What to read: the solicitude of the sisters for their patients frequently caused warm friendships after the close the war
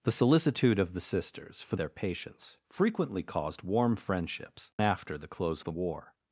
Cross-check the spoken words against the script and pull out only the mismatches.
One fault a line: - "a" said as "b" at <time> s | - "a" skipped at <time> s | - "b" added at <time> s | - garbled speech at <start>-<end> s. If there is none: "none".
none